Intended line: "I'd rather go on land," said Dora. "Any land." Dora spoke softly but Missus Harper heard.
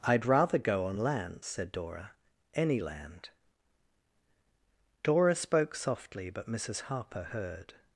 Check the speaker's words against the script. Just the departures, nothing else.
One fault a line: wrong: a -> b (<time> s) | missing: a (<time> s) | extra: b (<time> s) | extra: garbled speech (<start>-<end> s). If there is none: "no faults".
no faults